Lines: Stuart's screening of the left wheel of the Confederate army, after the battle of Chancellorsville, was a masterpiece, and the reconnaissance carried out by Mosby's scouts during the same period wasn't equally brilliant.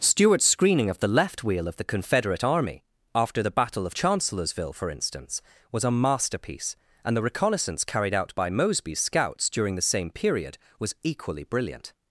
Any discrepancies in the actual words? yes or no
yes